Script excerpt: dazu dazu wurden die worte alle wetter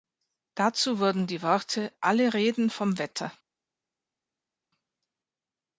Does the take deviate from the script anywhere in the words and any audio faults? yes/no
yes